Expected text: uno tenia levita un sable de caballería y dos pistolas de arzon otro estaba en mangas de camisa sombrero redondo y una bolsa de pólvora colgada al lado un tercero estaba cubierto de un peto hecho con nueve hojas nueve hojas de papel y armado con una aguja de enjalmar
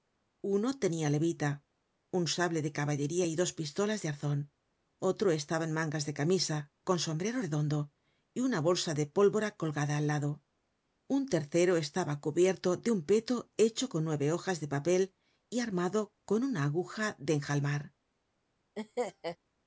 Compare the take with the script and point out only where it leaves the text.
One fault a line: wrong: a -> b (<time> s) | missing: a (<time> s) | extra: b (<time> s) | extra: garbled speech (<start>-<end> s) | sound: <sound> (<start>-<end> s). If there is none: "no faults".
extra: con (6.9 s)
missing: nueve hojas (14.6 s)
sound: laugh (18.8-19.4 s)